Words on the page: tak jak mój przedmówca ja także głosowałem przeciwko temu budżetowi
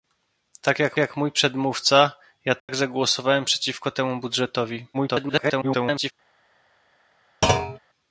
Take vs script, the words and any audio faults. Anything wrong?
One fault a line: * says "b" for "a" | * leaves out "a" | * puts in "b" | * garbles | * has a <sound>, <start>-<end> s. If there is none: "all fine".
* puts in "jak"
* has a dropout, 2.6-2.7 s
* garbles
* has a thud, 7.4-7.8 s